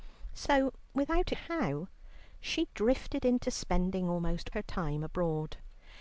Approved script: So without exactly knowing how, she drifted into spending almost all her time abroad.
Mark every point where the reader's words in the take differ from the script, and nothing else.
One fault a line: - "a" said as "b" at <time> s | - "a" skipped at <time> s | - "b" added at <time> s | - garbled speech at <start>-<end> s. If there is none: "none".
- "exactly knowing" skipped at 1.3 s
- "all" skipped at 4.5 s